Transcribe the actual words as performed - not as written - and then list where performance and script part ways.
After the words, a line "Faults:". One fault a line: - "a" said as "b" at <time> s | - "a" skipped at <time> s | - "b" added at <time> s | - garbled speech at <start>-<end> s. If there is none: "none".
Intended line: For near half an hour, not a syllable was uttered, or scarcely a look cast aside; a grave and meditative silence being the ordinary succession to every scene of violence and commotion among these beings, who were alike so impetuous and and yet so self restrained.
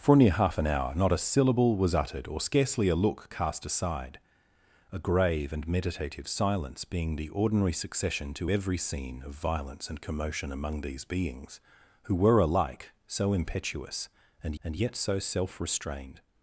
For near half an hour, not a syllable was uttered, or scarcely a look cast aside; a grave and meditative silence being the ordinary succession to every scene of violence and commotion among these beings, who were alike so impetuous and and yet so self restrained.
Faults:
none